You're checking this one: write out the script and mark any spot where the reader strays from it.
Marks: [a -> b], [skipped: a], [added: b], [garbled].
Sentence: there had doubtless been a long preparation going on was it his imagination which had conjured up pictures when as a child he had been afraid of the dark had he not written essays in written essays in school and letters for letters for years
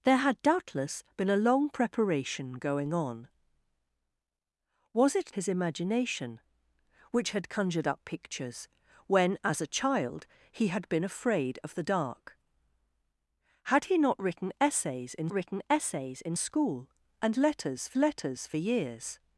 there had doubtless been a long preparation going on was it his imagination which had conjured up pictures when as a child he had been afraid of the dark had he not written essays in written essays in school and letters for letters for years